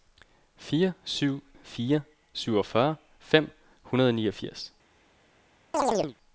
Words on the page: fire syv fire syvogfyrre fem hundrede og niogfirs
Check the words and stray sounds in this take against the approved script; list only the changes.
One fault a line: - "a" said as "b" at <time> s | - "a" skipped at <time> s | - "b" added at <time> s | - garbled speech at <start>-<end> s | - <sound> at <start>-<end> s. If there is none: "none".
- chirp at 5.7-6.2 s